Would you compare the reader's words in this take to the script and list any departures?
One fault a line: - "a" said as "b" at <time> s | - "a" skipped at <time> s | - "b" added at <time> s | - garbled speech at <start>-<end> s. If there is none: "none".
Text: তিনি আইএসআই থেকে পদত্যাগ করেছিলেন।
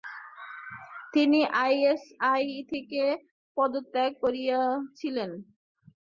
none